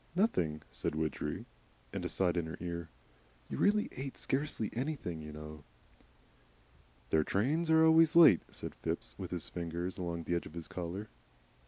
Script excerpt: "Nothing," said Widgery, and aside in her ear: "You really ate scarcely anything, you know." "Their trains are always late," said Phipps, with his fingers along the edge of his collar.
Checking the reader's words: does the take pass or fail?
pass